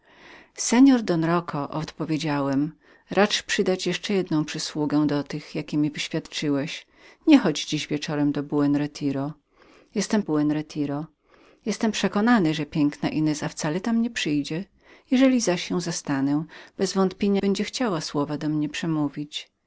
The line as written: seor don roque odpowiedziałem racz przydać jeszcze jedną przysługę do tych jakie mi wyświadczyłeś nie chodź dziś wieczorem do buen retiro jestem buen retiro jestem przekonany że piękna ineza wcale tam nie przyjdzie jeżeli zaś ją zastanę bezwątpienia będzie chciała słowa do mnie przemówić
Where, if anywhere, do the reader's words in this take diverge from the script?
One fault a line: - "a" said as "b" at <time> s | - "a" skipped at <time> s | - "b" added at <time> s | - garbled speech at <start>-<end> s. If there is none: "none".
none